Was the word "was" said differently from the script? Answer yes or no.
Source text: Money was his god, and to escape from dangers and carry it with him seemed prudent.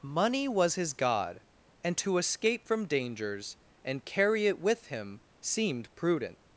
no